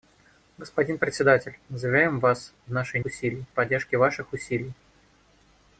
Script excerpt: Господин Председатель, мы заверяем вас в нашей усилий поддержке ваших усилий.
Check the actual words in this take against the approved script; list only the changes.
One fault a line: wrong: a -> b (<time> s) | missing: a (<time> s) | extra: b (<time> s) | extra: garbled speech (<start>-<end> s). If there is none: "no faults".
no faults